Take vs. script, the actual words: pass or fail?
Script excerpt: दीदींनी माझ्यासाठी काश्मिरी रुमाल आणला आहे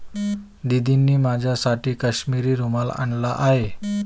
pass